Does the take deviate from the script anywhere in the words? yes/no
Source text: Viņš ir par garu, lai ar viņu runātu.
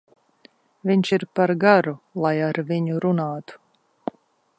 no